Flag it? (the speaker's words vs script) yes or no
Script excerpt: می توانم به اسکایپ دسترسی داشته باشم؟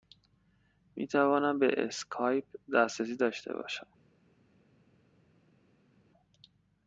no